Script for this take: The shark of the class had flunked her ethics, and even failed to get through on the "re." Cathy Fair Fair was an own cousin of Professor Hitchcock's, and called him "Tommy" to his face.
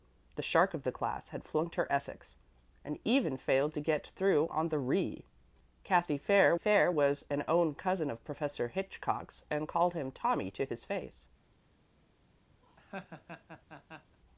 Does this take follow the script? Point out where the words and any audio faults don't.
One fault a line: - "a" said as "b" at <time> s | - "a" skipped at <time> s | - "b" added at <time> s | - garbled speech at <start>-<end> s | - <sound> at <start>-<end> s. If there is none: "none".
- laugh at 12.6-14.2 s